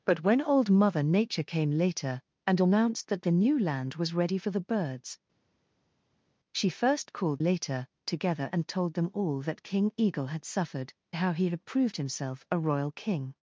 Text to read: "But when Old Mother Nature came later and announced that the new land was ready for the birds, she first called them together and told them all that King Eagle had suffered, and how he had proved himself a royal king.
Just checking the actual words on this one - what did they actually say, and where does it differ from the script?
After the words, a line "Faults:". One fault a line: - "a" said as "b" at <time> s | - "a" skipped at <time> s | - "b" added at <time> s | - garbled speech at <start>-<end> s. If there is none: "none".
"But when Old Mother Nature came later and announced that the new land was ready for the birds, she first called later together and told them all that King Eagle had suffered, how he had proved himself a royal king.
Faults:
- "them" said as "later" at 7.4 s
- "and" skipped at 10.9 s